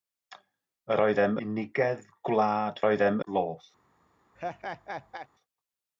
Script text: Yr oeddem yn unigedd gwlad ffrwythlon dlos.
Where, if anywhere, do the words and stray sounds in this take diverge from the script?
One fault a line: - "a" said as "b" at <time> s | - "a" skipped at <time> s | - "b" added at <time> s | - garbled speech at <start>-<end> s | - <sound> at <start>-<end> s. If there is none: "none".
- "yn" skipped at 1.4 s
- "ffrwythlon" said as "oeddem" at 2.9 s
- laugh at 4.4-5.3 s